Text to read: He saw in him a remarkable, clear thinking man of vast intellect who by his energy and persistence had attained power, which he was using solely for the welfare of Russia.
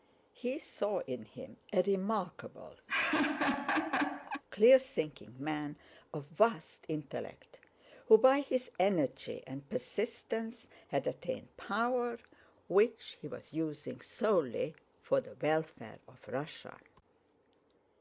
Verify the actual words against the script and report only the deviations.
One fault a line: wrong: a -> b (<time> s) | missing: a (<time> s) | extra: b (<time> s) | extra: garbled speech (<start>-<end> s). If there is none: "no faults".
no faults